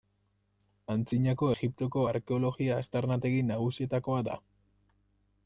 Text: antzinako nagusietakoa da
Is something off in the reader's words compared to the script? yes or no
yes